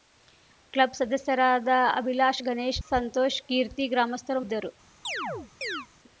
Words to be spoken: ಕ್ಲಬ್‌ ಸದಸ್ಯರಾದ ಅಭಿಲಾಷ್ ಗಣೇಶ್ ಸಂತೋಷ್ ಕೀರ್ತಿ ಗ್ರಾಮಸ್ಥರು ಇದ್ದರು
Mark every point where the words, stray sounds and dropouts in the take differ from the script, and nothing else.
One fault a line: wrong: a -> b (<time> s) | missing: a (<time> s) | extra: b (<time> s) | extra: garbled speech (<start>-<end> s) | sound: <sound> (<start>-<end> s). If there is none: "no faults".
sound: chirp (5.0-5.9 s)